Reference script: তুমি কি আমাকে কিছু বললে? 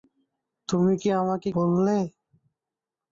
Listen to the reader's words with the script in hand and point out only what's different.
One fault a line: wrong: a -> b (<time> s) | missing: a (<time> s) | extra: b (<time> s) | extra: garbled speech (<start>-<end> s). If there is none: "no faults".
missing: কিছু (1.5 s)